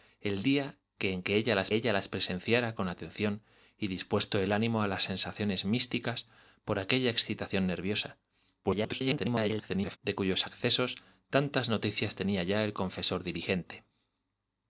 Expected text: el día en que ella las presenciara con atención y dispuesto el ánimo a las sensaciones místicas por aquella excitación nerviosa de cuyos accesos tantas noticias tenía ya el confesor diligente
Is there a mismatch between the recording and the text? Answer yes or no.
yes